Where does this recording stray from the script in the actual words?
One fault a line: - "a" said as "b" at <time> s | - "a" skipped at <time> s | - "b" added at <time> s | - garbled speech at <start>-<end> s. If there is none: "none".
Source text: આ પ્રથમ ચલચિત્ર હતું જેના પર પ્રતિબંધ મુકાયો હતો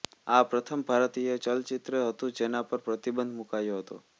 - "ભારતીય" added at 0.9 s